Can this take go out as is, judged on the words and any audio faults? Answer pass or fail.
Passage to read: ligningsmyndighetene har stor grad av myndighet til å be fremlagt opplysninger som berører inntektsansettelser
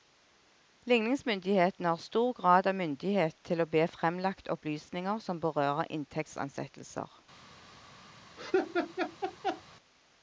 fail